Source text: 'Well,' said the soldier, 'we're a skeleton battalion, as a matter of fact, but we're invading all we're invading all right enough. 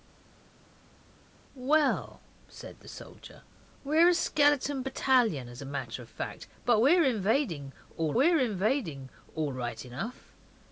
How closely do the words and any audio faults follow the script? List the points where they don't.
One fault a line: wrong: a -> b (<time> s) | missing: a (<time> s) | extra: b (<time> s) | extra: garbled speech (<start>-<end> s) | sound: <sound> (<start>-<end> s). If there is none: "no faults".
no faults